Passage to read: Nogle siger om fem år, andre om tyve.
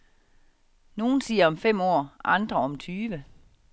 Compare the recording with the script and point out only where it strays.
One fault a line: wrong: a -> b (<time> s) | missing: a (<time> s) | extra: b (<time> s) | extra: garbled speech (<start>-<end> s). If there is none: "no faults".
no faults